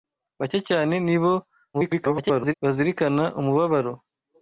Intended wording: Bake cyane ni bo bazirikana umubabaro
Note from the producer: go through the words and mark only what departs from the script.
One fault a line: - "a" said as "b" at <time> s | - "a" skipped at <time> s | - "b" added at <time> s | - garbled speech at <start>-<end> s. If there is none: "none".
- garbled speech at 1.7-2.5 s